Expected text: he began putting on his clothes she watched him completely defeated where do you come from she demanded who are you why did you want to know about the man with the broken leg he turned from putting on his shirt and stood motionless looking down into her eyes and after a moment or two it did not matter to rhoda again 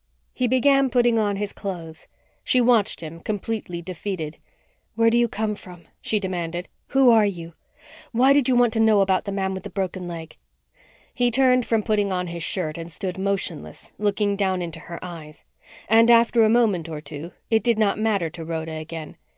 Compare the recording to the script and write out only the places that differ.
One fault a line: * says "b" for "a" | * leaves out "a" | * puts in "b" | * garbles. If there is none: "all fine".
all fine